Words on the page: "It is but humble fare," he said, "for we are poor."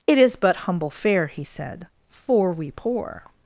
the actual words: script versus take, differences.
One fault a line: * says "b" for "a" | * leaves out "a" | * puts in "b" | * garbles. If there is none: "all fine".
* leaves out "are"